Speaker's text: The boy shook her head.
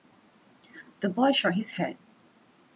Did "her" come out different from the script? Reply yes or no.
yes